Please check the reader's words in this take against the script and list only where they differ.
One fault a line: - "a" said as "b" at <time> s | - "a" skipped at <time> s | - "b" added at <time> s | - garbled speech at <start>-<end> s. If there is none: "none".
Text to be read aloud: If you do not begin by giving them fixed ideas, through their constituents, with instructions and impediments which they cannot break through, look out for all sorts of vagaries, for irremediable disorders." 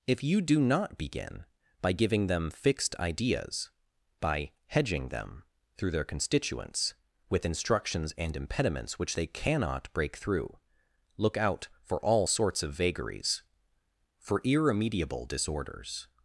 - "by hedging them" added at 4.2 s